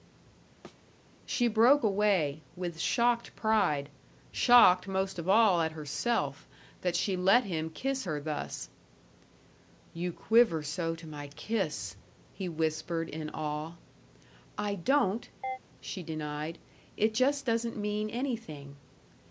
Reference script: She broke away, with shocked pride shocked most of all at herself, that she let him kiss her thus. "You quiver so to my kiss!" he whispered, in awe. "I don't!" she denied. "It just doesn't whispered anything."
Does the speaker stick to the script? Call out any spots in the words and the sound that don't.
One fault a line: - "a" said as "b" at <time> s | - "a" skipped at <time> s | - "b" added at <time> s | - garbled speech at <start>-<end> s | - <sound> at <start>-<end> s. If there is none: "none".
- thud at 0.6-0.8 s
- chirp at 15.4-15.6 s
- "whispered" said as "mean" at 17.8 s